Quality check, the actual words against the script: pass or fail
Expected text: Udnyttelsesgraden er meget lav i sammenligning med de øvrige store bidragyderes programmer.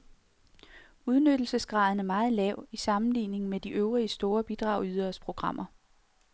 pass